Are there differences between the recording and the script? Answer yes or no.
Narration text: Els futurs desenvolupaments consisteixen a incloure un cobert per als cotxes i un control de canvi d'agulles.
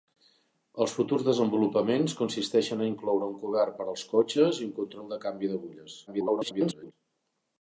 yes